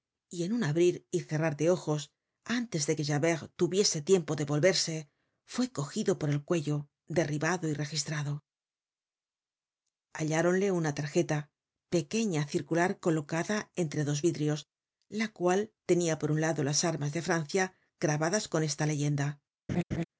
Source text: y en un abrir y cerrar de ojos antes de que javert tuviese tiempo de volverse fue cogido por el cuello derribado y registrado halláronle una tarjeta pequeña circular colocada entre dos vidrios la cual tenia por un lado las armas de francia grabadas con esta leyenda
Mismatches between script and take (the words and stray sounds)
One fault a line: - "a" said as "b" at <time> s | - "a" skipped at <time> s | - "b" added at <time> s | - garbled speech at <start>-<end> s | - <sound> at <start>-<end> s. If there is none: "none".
- laugh at 19.7-20.0 s